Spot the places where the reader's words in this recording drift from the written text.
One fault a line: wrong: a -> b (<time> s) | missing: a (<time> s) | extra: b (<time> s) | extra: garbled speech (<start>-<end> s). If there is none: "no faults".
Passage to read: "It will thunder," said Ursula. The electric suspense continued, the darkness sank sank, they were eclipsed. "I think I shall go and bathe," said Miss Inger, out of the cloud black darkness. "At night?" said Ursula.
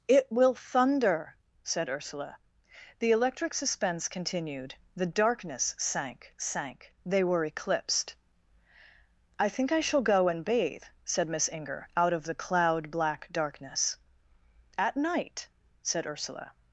no faults